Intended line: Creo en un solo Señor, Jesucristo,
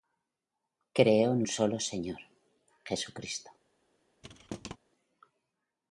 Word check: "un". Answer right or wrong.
wrong